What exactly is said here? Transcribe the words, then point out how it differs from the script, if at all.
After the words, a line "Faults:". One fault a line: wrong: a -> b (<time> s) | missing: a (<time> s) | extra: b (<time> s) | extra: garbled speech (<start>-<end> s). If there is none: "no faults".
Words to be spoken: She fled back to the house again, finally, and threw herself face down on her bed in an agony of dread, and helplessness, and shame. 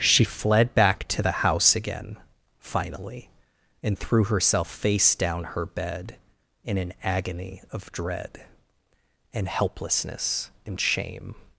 She fled back to the house again, finally, and threw herself face down her bed in an agony of dread, and helplessness, and shame.
Faults:
missing: on (5.4 s)